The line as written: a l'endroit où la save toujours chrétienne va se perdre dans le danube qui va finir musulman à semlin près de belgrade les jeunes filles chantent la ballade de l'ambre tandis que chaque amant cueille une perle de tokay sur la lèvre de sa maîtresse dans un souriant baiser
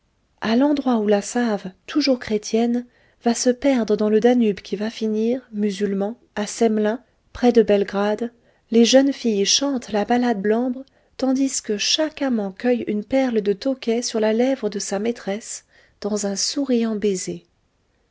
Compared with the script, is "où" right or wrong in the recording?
right